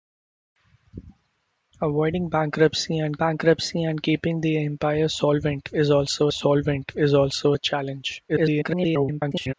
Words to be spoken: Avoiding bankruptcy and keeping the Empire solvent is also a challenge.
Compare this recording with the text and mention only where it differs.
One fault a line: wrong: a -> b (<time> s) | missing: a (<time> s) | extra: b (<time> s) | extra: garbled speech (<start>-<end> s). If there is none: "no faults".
extra: bankruptcy and (3.2 s)
extra: solvent is also (6.3 s)
extra: garbled speech (8.3-9.5 s)